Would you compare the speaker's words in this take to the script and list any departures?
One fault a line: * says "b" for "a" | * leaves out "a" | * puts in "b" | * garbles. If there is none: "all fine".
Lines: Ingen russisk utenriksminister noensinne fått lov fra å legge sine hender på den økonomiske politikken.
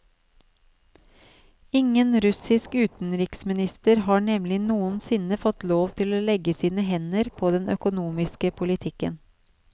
* puts in "har nemlig"
* says "til" for "fra"